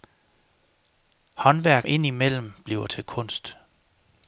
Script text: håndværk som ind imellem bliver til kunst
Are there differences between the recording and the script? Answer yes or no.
yes